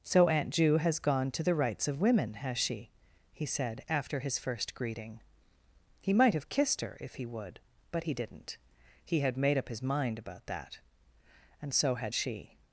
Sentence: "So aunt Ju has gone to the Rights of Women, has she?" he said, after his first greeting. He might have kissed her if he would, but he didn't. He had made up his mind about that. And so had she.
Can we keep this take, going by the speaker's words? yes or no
yes